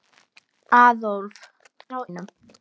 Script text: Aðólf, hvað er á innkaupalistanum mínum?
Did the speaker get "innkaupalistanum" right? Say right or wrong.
wrong